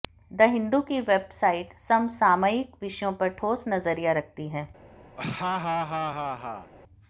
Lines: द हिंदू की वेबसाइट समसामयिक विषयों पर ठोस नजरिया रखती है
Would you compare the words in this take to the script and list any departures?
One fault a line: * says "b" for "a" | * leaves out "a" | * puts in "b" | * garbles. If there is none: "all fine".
all fine